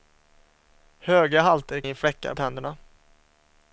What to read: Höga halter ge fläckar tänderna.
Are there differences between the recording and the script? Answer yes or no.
no